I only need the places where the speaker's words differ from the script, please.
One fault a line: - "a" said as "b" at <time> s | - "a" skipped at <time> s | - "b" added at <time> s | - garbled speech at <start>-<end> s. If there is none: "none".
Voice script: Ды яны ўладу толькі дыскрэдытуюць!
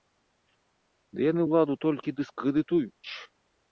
none